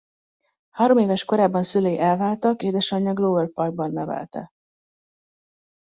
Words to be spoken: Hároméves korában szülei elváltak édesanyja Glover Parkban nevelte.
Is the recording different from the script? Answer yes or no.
no